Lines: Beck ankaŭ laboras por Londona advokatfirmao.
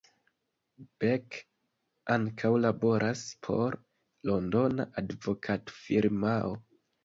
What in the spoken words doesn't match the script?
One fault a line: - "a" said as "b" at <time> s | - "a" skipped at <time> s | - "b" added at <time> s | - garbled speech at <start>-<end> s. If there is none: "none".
none